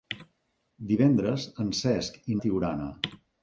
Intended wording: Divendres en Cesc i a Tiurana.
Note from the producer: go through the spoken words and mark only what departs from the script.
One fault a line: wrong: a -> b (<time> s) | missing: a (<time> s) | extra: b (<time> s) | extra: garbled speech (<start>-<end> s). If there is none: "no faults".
no faults